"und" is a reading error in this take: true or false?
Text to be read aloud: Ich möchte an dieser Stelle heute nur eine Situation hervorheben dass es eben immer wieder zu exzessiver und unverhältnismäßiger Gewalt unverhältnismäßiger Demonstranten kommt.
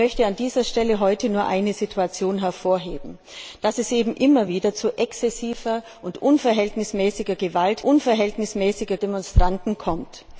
false